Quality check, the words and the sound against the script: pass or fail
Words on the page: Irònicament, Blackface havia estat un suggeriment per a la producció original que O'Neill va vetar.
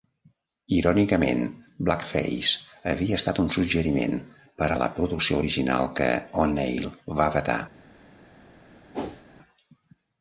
fail